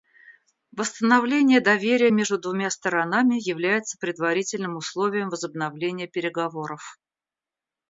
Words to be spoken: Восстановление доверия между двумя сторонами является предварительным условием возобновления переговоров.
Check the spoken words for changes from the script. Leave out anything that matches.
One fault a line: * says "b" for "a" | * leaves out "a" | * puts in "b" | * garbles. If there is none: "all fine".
all fine